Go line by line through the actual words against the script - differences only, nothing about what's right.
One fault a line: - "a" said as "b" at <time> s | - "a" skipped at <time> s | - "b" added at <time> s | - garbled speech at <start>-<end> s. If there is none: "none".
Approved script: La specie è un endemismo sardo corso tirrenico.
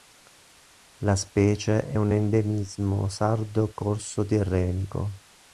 none